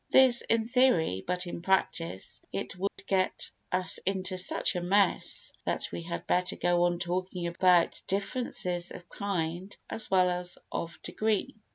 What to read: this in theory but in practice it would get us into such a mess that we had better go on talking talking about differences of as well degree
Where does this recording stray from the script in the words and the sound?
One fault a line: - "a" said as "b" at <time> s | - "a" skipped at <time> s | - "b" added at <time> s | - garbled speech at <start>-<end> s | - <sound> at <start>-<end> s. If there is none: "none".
- dropout at 2.9-3.0 s
- "talking" skipped at 7.5 s
- "kind" added at 9.1 s
- "as of" added at 10.3 s